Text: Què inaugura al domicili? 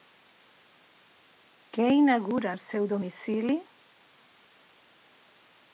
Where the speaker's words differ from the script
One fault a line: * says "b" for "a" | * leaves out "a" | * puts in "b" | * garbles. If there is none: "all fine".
* puts in "seu"